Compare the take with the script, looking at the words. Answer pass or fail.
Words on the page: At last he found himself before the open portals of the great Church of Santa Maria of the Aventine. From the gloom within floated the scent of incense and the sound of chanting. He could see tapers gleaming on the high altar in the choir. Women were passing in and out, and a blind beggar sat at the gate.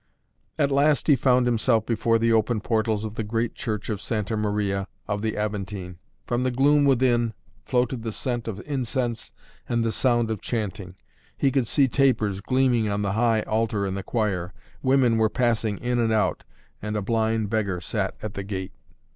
pass